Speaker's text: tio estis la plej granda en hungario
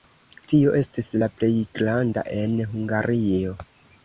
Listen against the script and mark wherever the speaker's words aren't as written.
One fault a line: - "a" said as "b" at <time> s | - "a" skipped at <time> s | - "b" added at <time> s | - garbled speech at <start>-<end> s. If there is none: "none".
none